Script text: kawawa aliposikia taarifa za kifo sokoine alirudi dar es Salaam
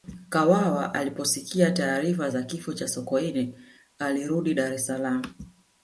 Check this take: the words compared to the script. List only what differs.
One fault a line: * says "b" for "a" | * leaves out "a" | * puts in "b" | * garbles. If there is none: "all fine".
* puts in "cha"